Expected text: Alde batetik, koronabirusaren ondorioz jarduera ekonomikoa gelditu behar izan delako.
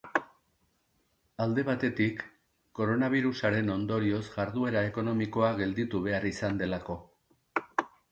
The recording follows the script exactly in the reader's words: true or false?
true